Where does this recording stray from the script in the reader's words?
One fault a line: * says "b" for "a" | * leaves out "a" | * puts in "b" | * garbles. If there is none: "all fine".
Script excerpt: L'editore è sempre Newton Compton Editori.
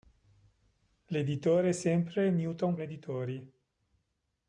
* leaves out "Compton"